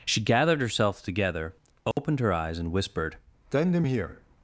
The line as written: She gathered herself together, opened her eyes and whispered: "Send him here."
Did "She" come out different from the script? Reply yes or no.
no